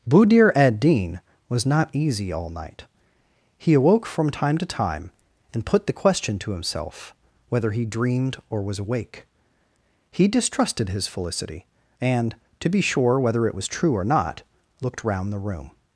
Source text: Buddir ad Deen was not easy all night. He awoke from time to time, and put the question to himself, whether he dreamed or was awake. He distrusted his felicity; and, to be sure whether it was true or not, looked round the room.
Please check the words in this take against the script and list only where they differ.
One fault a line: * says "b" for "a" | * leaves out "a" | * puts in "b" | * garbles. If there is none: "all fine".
all fine